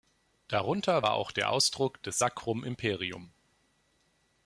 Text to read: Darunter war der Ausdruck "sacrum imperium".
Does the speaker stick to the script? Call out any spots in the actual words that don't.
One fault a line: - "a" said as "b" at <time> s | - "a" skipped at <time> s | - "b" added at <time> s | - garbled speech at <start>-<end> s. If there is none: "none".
- "auch" added at 1.1 s
- "des" added at 2.0 s